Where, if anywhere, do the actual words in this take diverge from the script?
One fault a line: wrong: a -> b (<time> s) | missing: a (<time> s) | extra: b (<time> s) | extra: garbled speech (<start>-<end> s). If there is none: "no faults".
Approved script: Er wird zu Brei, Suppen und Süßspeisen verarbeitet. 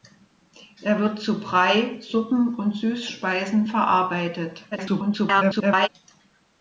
extra: garbled speech (4.7-5.9 s)